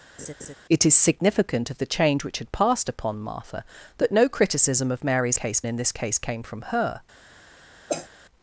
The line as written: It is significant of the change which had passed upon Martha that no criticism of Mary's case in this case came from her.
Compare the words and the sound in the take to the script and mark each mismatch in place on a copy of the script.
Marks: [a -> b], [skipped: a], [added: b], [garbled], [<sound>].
[laugh] It is significant of the change which had passed upon Martha that no criticism of Mary's case in this case came from her. [cough]